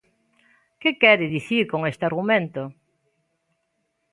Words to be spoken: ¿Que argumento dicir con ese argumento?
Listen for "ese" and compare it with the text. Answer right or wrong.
wrong